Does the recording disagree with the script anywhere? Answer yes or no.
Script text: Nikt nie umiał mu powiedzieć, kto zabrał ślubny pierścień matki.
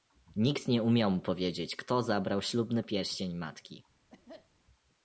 no